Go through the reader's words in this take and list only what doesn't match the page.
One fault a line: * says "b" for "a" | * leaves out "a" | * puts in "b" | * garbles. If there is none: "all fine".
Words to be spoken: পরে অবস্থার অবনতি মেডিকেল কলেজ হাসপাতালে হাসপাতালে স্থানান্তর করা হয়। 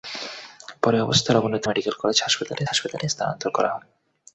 all fine